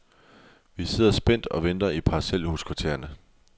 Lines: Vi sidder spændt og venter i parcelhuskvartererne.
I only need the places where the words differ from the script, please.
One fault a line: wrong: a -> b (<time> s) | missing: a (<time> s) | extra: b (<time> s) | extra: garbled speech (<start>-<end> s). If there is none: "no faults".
no faults